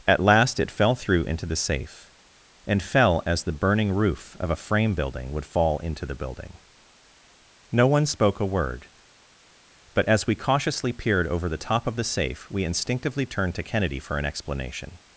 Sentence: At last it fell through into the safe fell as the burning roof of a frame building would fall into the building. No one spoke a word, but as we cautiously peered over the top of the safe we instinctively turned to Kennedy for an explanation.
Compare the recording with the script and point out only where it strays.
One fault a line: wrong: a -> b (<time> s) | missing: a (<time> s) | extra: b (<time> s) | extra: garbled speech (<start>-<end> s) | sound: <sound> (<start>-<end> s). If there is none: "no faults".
extra: and (2.7 s)